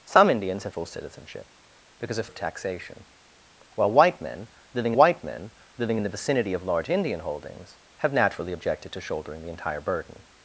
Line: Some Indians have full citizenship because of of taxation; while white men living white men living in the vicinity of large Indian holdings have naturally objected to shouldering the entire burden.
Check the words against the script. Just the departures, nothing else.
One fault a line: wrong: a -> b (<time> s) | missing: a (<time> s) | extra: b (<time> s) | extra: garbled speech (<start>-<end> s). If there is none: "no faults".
no faults